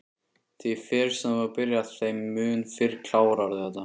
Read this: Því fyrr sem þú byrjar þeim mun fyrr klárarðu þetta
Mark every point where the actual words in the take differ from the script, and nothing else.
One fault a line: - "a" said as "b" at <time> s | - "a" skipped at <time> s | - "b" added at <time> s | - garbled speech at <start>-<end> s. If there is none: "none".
none